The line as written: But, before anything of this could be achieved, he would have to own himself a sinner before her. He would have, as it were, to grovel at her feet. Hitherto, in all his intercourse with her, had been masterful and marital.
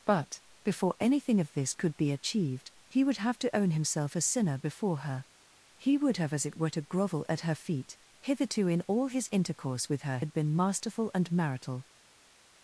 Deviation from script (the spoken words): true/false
false